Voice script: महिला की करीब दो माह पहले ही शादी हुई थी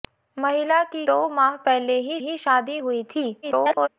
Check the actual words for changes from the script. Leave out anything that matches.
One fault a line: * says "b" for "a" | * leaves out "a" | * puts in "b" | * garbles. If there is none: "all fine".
* leaves out "करीब"
* puts in "ही"
* garbles